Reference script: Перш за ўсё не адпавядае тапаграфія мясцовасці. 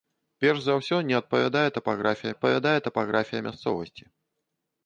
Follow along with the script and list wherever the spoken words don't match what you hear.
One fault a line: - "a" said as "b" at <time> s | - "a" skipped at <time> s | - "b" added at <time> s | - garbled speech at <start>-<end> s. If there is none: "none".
- "адпавядае тапаграфія" added at 2.3 s